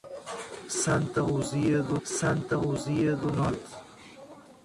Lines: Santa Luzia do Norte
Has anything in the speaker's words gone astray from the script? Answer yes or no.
yes